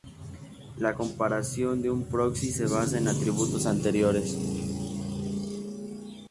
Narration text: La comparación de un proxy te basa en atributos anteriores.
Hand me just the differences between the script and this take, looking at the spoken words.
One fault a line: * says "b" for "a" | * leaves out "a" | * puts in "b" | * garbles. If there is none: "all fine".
* says "se" for "te"